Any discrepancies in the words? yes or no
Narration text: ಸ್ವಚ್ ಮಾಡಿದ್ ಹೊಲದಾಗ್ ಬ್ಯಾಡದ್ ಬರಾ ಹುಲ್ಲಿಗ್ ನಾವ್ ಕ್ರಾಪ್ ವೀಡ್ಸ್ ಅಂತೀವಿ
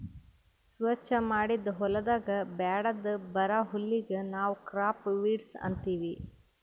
no